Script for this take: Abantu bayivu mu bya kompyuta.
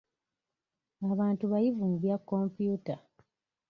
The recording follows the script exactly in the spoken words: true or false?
true